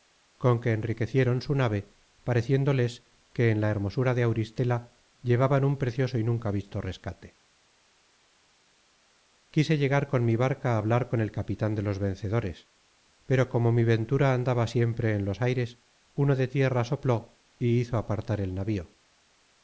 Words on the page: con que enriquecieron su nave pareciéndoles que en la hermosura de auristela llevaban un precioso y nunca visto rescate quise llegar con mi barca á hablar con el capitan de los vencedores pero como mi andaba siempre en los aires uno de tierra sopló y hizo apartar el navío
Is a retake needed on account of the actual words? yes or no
yes